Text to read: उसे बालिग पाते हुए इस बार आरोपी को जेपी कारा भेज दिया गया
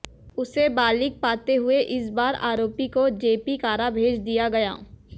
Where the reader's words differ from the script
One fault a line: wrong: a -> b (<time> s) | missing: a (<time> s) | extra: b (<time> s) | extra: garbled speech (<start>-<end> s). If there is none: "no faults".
no faults